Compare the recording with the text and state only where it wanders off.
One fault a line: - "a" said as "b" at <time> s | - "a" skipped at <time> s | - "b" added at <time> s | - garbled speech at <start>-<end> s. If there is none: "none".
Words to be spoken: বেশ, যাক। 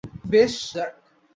none